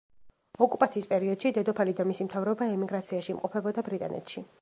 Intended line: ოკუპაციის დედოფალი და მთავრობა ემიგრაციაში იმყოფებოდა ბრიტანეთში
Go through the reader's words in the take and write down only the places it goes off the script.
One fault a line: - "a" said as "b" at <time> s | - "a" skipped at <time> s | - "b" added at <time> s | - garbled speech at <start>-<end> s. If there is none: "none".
- "პერიოდში" added at 1.1 s
- "მისი" added at 2.1 s